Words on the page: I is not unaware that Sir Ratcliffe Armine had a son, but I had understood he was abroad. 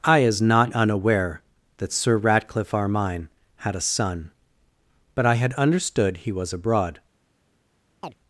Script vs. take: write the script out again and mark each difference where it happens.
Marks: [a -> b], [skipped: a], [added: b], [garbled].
I is not unaware that Sir Ratcliffe Armine had a son, but I had understood he was abroad.